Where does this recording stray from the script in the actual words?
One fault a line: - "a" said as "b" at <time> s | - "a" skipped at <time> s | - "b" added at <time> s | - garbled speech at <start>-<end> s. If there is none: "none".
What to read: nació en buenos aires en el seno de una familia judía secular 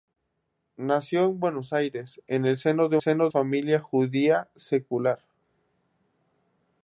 - "una" said as "seno" at 3.0 s